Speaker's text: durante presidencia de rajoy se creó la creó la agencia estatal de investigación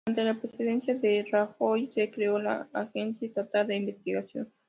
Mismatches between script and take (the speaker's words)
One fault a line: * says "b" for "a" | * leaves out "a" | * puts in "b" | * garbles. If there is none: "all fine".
* puts in "la"
* leaves out "creó la"